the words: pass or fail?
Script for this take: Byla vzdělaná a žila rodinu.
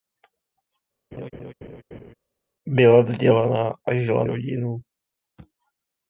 pass